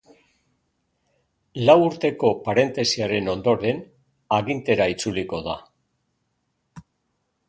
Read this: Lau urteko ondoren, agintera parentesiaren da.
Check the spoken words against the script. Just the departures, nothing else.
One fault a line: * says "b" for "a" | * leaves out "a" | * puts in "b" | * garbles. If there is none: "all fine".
* puts in "parentesiaren"
* says "itzuliko" for "parentesiaren"